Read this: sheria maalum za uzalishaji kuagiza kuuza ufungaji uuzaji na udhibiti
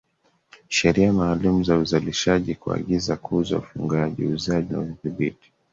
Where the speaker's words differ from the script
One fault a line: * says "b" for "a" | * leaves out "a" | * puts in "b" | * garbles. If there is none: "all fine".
all fine